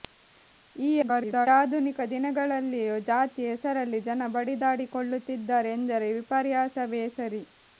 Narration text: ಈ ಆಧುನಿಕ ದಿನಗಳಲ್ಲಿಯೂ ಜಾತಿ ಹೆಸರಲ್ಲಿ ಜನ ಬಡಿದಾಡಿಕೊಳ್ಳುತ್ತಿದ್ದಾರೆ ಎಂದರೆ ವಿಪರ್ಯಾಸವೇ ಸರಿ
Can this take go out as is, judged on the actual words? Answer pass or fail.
fail